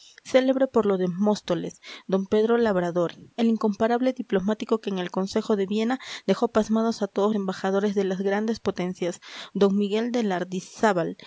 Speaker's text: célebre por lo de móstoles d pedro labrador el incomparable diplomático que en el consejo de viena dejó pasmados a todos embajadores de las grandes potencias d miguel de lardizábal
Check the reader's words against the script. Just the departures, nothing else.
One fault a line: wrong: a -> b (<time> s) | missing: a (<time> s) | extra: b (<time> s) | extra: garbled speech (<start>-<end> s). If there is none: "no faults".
no faults